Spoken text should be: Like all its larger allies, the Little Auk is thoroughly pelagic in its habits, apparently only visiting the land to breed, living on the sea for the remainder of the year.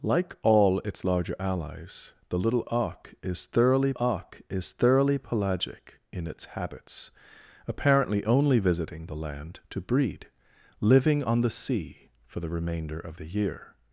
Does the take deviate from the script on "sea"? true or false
false